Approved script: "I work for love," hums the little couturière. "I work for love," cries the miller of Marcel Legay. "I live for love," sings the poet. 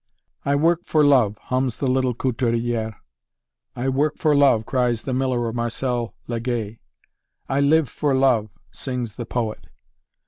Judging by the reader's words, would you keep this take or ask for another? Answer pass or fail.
pass